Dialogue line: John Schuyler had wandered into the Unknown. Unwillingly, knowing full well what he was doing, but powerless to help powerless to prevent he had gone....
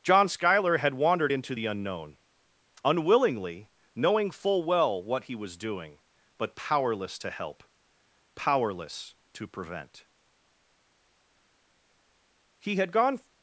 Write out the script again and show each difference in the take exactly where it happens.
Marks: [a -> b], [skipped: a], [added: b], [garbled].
John Schuyler had wandered into the Unknown. Unwillingly, knowing full well what he was doing, but powerless to help powerless to prevent he had gone....